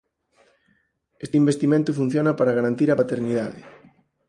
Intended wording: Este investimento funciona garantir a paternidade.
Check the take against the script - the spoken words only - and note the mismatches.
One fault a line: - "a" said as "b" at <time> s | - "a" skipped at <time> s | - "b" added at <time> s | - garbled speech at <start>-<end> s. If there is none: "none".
- "para" added at 2.4 s